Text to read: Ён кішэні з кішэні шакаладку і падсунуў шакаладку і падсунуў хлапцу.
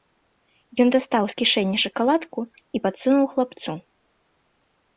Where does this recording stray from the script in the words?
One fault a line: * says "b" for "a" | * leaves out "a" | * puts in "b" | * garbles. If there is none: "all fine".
* says "дастаў" for "кішэні"
* leaves out "шакаладку і падсунуў"